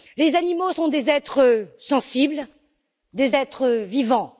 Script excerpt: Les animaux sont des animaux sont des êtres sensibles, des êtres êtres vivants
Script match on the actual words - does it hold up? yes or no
no